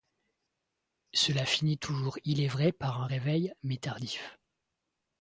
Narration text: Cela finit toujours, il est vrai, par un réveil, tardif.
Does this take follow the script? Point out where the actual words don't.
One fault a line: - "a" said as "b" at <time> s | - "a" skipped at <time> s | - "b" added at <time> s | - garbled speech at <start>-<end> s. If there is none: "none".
- "mais" added at 3.6 s